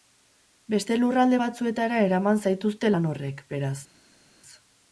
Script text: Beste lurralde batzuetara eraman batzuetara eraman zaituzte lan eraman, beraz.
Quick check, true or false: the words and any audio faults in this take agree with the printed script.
false